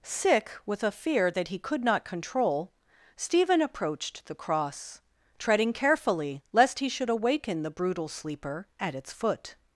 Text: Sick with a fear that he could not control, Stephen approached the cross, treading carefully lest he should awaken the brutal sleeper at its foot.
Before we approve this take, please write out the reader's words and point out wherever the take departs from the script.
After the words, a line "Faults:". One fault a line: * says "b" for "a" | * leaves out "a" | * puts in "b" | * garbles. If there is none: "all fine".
Sick with a fear that he could not control, Stephen approached the cross, treading carefully lest he should awaken the brutal sleeper at its foot.
Faults:
all fine